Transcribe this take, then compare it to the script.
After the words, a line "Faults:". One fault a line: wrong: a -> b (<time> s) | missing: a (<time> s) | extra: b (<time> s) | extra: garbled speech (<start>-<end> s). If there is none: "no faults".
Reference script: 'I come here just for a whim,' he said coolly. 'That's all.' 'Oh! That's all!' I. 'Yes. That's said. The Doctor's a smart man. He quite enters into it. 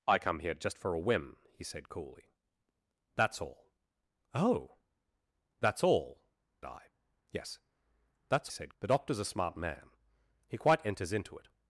'I come here just for a whim,' he said coolly. 'That's all.' 'Oh! That's all!' I. 'Yes. That's said. The Doctor's a smart man. He quite enters into it.
Faults:
no faults